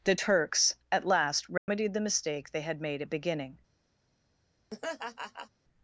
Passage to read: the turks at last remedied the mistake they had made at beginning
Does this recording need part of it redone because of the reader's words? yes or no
no